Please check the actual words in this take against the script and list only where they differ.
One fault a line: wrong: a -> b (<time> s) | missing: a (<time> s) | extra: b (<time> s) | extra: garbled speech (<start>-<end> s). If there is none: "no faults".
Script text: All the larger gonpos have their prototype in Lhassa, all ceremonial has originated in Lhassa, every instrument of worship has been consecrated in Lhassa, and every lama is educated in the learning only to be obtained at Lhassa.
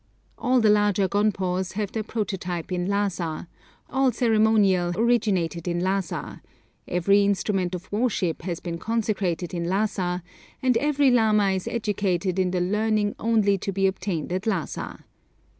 missing: has (4.9 s)